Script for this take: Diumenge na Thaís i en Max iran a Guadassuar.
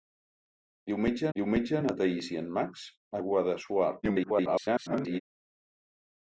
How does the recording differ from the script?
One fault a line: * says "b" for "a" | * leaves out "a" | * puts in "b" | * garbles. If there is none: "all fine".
* puts in "diumenge"
* leaves out "iran"
* garbles